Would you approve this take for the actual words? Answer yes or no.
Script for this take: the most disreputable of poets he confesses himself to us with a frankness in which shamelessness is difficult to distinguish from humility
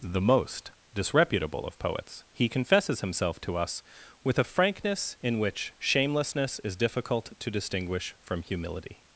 yes